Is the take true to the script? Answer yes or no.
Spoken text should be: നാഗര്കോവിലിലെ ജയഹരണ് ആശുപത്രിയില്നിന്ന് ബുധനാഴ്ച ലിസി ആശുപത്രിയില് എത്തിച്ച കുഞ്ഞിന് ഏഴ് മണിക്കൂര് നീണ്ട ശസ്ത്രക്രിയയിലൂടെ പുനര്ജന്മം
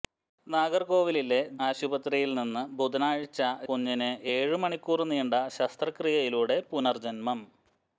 no